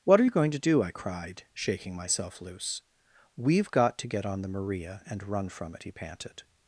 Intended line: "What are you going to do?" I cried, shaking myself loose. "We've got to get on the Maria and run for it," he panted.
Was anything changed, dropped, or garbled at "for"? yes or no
yes